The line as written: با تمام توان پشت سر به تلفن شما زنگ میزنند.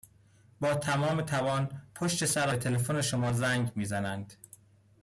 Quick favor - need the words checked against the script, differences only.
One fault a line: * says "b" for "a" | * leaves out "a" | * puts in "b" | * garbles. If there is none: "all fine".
all fine